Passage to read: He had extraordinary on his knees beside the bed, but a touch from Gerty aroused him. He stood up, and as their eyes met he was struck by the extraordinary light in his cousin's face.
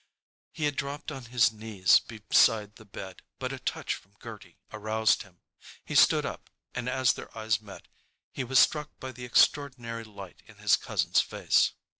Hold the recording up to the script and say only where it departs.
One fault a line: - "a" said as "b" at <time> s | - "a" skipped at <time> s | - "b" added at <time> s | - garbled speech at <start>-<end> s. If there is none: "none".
- "extraordinary" said as "dropped" at 0.8 s